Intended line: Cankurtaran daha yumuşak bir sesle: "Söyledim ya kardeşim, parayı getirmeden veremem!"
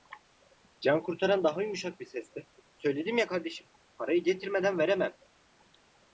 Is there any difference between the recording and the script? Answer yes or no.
no